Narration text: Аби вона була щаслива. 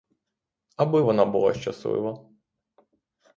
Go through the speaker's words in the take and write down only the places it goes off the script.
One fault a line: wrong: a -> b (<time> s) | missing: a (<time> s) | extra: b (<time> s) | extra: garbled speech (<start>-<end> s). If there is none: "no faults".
no faults